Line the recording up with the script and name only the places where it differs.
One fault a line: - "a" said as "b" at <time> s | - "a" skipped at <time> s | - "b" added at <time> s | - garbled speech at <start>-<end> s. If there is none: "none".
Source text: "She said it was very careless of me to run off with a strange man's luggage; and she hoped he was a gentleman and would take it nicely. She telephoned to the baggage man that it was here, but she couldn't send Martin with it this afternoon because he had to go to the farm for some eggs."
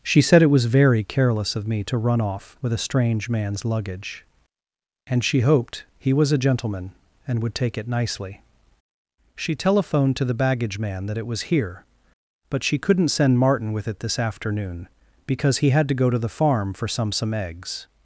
- "some" added at 17.1 s